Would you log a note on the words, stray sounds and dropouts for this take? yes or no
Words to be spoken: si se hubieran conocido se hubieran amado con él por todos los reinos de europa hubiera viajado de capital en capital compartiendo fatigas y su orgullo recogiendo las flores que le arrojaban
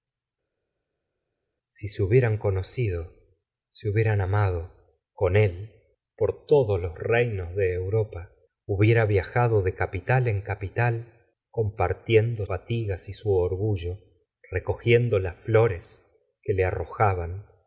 no